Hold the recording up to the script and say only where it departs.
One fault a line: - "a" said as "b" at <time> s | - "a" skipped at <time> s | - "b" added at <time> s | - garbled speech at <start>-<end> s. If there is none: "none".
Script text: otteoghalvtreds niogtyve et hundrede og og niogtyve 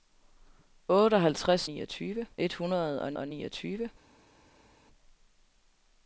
none